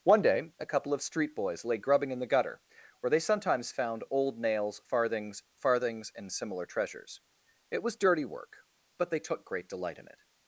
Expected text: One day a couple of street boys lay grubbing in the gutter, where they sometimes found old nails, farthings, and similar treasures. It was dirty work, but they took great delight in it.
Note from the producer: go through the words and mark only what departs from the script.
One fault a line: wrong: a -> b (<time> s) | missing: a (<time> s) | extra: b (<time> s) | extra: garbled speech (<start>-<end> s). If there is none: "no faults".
extra: farthings (5.6 s)